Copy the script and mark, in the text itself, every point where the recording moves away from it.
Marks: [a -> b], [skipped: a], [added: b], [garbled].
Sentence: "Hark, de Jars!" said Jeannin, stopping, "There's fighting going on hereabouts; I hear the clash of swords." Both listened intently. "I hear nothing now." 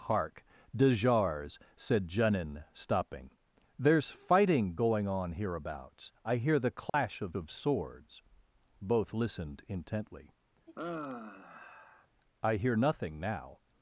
"Hark, de Jars!" said Jeannin, stopping, "There's fighting going on hereabouts; I hear the clash of [added: of] swords." Both listened intently. "I hear nothing now."